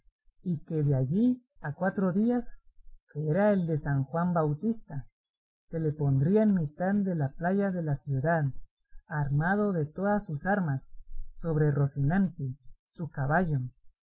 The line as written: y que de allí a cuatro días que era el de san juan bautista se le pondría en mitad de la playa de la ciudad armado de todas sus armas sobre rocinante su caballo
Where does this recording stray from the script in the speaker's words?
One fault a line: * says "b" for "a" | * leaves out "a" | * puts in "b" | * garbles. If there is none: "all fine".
all fine